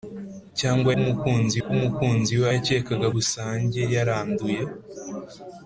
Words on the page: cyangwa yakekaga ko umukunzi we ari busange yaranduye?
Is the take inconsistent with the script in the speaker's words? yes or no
yes